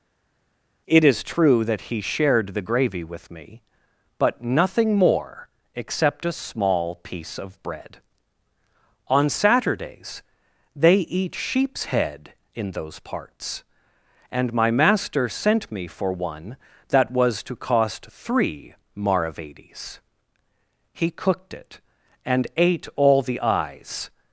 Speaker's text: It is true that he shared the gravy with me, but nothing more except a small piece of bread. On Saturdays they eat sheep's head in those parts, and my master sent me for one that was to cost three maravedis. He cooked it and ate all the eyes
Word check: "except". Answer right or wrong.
right